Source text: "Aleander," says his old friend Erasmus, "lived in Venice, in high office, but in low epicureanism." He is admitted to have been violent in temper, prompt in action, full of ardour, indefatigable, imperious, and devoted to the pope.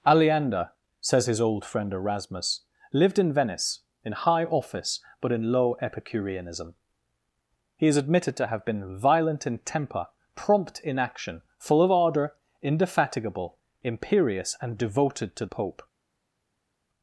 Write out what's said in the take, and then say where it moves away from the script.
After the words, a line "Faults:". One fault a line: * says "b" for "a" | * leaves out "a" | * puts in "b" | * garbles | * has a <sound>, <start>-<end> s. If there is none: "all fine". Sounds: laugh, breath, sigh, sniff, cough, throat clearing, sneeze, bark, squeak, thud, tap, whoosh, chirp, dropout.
"Aleander," says his old friend Erasmus, "lived in Venice, in high office, but in low epicureanism." He is admitted to have been violent in temper, prompt in action, full of ardour, indefatigable, imperious, and devoted to pope.
Faults:
* leaves out "the"